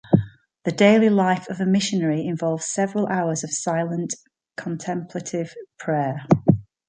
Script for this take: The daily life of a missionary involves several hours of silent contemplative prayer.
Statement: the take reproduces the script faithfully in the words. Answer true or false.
true